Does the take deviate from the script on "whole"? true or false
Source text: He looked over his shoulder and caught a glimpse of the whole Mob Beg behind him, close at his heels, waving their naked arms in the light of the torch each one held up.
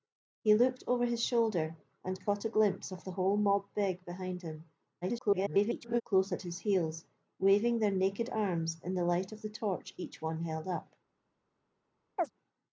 false